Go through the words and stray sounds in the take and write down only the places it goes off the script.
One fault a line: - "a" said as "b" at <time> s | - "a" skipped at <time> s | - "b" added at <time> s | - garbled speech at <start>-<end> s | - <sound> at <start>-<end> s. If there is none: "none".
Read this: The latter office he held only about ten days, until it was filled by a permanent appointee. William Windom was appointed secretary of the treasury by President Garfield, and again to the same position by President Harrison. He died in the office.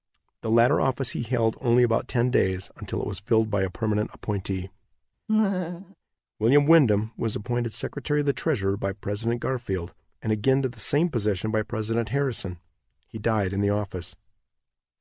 - laugh at 5.3-6.0 s